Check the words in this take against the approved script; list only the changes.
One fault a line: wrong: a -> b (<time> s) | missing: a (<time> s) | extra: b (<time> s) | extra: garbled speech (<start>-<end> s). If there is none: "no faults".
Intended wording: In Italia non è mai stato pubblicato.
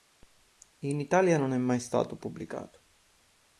no faults